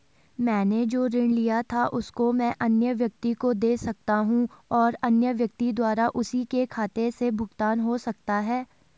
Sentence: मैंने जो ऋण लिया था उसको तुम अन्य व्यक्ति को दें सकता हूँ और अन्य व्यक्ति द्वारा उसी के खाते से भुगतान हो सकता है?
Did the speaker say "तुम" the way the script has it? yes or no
no